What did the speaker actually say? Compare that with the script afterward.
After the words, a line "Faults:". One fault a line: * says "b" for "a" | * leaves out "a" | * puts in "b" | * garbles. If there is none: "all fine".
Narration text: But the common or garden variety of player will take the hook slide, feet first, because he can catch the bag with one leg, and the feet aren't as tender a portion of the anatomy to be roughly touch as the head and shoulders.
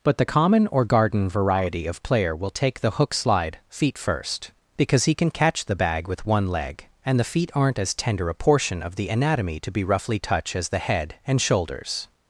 But the common or garden variety of player will take the hook slide, feet first, because he can catch the bag with one leg, and the feet aren't as tender a portion of the anatomy to be roughly touch as the head and shoulders.
Faults:
all fine